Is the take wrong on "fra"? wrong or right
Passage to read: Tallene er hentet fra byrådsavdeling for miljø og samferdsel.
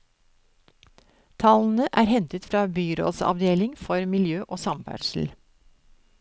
right